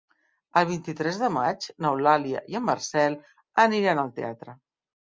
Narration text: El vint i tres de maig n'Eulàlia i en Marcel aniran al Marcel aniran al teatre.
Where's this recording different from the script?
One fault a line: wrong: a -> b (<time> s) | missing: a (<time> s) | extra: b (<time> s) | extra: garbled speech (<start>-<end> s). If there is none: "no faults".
missing: Marcel aniran al (4.2 s)